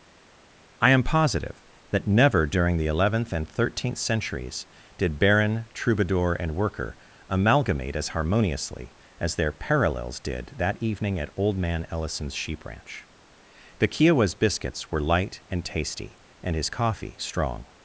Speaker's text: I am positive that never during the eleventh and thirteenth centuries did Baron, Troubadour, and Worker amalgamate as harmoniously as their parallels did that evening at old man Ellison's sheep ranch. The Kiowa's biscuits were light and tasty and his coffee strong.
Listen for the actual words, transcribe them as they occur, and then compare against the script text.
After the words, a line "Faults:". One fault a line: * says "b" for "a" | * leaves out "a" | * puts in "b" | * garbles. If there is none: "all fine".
I am positive that never during the eleventh and thirteenth centuries did Baron, Troubadour, and Worker amalgamate as harmoniously as their parallels did that evening at old man Ellison's sheep ranch. The Kiowa's biscuits were light and tasty and his coffee strong.
Faults:
all fine